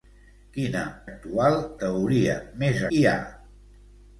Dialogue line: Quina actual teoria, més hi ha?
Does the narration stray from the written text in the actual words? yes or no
no